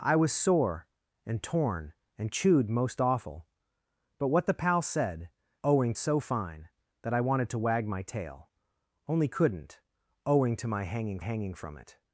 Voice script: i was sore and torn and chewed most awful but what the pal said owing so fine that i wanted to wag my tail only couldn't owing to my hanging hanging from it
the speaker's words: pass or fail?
pass